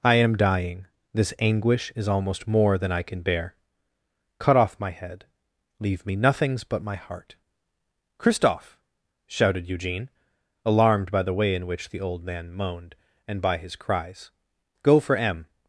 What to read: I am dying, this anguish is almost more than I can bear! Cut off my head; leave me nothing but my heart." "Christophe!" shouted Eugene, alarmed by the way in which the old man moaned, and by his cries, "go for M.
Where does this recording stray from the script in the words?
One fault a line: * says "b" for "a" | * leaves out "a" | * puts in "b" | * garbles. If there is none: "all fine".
* says "nothings" for "nothing"